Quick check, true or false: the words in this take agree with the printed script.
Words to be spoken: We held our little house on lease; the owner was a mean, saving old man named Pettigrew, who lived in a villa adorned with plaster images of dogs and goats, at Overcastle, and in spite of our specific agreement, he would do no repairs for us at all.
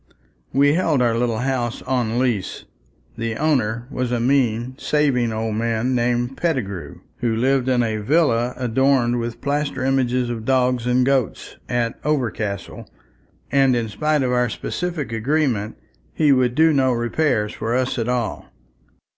true